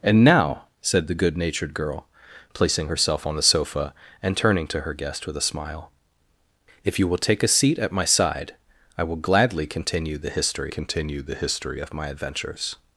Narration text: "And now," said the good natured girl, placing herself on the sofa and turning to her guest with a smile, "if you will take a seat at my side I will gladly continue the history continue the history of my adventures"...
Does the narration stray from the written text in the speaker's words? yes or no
no